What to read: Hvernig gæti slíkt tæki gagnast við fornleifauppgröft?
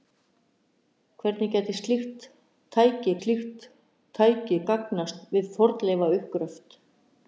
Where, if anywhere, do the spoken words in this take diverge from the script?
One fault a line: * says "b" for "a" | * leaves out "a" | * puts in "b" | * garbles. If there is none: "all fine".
* puts in "slíkt tæki"